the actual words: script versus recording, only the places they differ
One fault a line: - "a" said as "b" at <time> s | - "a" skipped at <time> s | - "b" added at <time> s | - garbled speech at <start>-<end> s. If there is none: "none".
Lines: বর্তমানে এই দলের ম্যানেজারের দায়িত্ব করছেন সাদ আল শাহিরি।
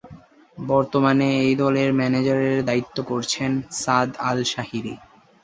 none